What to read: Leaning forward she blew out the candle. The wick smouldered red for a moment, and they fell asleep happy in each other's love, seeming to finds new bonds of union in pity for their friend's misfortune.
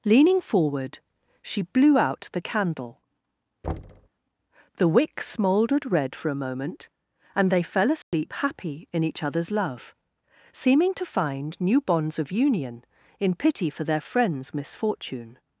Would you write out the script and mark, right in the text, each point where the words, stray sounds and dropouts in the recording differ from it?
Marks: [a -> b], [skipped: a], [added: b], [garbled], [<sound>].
Leaning forward she blew out the candle. [thud] The wick smouldered red for a moment, and they fell asleep [dropout] happy in each other's love, seeming to [finds -> find] new bonds of union in pity for their friend's misfortune.